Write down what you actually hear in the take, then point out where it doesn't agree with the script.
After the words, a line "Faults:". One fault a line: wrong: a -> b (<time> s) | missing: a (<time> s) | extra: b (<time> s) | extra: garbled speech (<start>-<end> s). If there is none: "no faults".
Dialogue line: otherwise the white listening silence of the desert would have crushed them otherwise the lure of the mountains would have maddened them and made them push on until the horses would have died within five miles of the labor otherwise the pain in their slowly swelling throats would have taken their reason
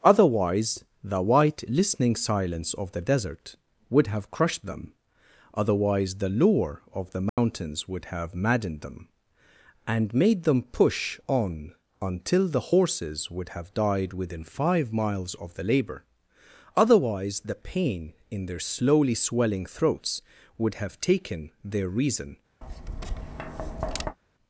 otherwise the white listening silence of the desert would have crushed them otherwise the lure of the mountains would have maddened them and made them push on until the horses would have died within five miles of the labor otherwise the pain in their slowly swelling throats would have taken their reason
Faults:
no faults